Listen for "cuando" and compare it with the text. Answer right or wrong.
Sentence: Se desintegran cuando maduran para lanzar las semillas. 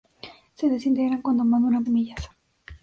right